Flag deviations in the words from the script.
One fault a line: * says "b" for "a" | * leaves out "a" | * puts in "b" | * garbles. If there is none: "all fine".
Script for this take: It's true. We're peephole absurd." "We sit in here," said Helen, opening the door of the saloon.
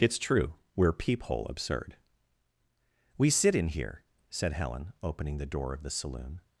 all fine